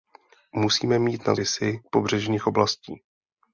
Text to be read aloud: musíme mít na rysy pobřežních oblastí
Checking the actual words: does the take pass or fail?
pass